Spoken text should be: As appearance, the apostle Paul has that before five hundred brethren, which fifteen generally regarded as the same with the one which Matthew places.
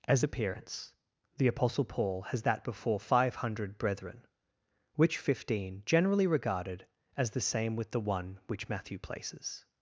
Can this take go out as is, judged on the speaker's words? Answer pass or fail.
pass